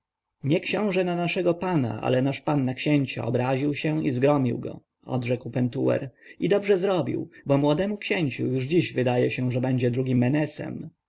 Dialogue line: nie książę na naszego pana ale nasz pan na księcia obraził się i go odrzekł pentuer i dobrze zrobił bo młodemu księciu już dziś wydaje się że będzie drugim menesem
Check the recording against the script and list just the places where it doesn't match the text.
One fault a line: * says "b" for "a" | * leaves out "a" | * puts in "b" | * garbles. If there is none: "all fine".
* puts in "zgromił"